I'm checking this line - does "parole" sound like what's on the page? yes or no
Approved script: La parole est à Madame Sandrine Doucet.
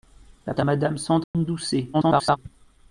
no